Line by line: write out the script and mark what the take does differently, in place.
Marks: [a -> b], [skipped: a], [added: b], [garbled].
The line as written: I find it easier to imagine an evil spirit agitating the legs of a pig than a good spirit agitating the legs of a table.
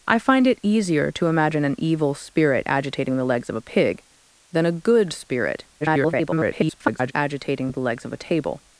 I find it easier to imagine an evil spirit agitating the legs of a pig than a good spirit [garbled] agitating the legs of a table.